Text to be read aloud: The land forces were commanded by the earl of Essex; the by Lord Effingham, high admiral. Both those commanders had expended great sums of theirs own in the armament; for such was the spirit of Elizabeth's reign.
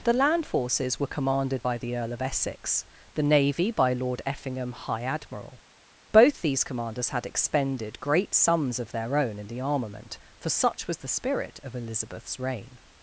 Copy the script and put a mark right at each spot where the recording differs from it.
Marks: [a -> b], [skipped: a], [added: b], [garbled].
The land forces were commanded by the earl of Essex; the [added: navy] by Lord Effingham, high admiral. Both [those -> these] commanders had expended great sums of [theirs -> their] own in the armament; for such was the spirit of Elizabeth's reign.